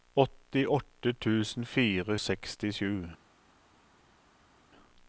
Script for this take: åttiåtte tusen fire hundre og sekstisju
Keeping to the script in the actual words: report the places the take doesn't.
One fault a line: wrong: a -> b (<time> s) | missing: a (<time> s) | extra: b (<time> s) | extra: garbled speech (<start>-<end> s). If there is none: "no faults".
missing: hundre og (2.2 s)